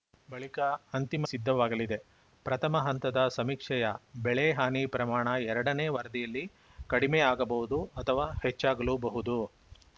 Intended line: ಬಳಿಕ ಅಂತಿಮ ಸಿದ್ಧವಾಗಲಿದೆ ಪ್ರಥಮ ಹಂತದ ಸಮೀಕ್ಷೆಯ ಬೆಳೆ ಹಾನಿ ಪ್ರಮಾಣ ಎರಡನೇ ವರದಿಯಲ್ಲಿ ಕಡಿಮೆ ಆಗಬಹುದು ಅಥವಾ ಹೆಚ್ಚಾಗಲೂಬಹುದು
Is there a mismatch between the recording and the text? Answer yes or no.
no